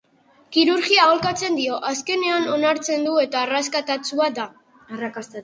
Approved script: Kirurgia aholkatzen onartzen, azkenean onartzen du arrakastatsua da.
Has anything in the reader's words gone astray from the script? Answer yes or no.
yes